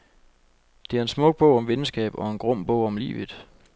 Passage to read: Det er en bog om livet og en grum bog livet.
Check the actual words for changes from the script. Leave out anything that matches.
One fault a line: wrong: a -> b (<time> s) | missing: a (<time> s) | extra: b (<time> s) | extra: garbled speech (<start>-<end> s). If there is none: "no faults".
extra: smuk (1.1 s)
wrong: livet -> venskab (1.7 s)
extra: om (2.9 s)